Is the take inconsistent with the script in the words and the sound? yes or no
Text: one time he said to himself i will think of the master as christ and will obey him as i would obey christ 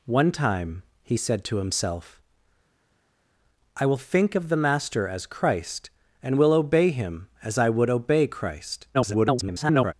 yes